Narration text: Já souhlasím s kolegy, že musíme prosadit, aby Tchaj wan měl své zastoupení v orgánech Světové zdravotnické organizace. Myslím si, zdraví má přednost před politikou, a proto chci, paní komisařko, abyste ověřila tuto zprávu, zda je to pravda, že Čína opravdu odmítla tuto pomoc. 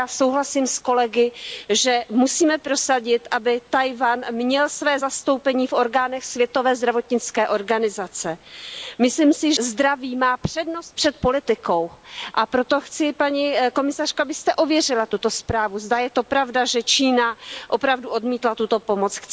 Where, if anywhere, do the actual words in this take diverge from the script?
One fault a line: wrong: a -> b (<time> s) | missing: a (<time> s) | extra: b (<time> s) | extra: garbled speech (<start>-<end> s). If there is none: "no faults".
no faults